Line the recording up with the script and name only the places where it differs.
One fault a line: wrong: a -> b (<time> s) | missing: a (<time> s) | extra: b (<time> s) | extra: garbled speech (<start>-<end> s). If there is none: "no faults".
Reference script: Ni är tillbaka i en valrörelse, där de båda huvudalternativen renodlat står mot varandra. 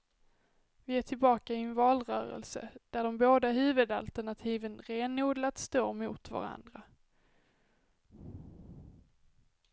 wrong: Ni -> Vi (0.8 s)